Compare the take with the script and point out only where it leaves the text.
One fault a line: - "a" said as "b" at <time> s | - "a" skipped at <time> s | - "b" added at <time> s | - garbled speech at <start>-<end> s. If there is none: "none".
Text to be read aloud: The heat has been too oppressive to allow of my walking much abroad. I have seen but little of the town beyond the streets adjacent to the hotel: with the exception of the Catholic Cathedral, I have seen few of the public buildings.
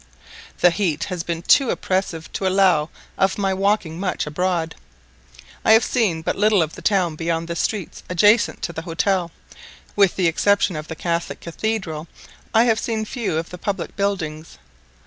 none